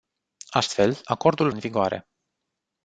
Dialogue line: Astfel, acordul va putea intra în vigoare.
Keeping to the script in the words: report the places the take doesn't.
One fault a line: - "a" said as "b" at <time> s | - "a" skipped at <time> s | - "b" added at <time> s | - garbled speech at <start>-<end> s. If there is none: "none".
- "va putea intra" skipped at 1.5 s